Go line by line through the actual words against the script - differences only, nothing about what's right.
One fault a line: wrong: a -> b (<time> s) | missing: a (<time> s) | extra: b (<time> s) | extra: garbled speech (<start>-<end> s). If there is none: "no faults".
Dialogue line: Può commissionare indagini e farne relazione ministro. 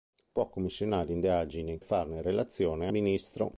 no faults